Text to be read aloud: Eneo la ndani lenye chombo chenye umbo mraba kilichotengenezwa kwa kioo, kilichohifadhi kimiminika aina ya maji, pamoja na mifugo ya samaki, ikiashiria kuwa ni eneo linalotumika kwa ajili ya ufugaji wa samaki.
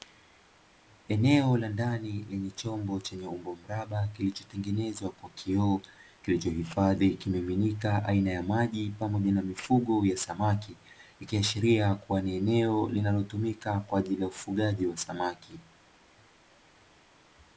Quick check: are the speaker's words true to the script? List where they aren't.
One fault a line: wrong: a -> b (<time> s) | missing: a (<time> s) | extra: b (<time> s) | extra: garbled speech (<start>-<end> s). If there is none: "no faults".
no faults